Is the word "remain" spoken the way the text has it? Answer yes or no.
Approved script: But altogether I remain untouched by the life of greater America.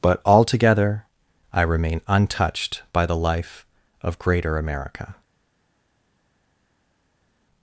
yes